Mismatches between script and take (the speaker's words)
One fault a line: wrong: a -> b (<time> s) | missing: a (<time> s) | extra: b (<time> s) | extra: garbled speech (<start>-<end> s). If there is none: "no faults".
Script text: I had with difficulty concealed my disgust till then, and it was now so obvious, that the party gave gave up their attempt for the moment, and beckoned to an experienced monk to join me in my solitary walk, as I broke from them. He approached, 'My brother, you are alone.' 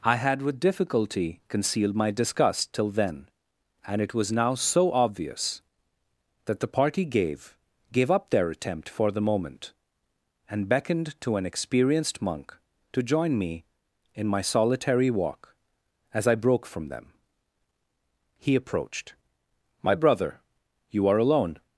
no faults